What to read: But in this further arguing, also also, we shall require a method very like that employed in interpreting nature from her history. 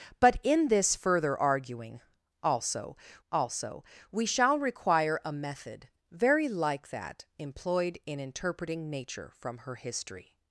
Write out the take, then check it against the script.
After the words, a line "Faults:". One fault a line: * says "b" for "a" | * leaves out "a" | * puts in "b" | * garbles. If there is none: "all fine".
But in this further arguing, also also, we shall require a method very like that employed in interpreting nature from her history.
Faults:
all fine